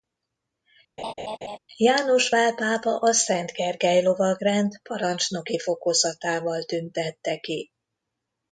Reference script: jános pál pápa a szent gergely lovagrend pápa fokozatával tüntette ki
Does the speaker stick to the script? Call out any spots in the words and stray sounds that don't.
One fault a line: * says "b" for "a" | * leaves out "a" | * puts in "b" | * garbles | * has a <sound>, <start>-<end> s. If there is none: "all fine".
* has a laugh, 1.0-1.6 s
* says "parancsnoki" for "pápa"